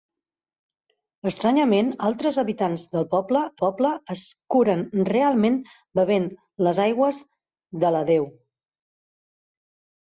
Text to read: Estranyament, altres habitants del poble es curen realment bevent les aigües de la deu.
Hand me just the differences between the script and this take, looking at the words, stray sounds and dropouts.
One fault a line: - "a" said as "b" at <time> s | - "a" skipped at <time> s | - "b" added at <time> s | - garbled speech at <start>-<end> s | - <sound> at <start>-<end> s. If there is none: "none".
- "poble" added at 3.6 s